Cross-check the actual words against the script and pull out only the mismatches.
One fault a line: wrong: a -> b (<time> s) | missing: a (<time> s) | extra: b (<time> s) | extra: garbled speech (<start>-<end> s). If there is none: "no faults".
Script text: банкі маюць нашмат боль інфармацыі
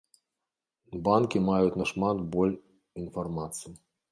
no faults